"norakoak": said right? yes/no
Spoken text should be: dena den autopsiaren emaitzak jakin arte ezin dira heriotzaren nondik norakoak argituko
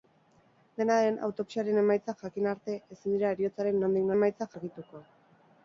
no